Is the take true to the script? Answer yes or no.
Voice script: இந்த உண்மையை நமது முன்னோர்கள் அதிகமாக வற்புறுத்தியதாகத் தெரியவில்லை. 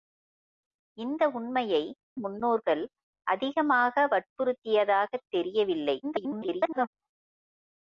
no